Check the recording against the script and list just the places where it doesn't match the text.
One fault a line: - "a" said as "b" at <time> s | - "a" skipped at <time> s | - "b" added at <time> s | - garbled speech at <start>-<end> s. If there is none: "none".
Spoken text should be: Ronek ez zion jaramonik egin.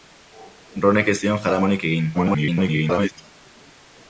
- garbled speech at 2.1-3.1 s